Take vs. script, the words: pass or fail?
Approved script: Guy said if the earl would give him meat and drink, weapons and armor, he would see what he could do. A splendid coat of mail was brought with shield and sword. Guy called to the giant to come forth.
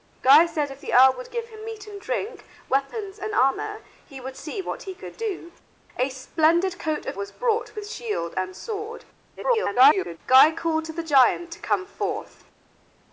fail